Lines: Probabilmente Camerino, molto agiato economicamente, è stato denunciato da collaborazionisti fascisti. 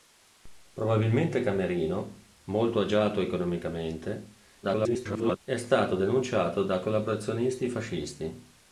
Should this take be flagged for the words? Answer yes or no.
yes